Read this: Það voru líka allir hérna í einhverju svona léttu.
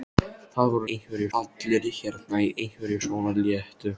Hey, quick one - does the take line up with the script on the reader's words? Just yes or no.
no